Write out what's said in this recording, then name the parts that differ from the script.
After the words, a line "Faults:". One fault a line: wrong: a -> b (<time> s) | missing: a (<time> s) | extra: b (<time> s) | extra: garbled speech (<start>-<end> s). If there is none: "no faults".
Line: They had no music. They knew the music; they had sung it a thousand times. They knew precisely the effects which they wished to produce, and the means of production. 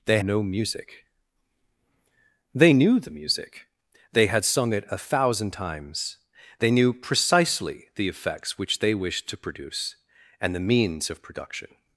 They no music. They knew the music; they had sung it a thousand times. They knew precisely the effects which they wished to produce, and the means of production.
Faults:
missing: had (0.2 s)